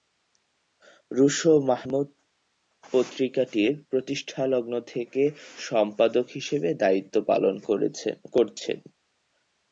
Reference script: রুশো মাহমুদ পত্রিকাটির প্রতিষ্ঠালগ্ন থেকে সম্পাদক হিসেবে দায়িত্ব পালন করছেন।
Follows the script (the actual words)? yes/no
yes